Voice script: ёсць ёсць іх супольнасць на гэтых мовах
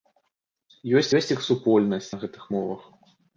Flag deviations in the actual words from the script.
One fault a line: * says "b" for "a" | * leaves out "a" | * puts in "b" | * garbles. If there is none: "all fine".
all fine